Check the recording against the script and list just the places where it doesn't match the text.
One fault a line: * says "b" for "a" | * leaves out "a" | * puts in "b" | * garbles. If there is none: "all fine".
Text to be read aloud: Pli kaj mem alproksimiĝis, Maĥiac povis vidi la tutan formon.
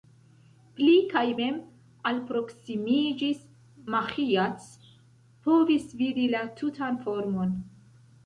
all fine